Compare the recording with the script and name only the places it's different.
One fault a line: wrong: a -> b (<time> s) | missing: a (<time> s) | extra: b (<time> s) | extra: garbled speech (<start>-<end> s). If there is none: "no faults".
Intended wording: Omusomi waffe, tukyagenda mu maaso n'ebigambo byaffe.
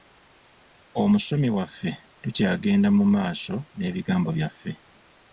no faults